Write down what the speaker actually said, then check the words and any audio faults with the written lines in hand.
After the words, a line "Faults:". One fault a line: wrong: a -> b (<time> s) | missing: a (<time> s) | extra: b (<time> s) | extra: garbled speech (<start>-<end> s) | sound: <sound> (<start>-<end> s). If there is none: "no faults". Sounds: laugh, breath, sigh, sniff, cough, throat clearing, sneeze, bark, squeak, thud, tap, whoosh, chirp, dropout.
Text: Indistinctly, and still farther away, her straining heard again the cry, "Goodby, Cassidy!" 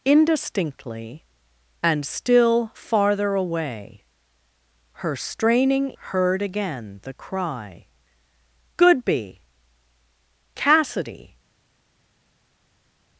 Indistinctly, and still farther away, her straining heard again the cry, "Goodby, Cassidy!"
Faults:
no faults